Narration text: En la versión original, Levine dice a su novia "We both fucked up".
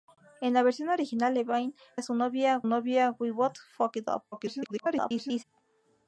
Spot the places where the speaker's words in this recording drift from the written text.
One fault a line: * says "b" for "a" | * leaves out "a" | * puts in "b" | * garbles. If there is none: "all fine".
* leaves out "dice"
* puts in "novia"
* garbles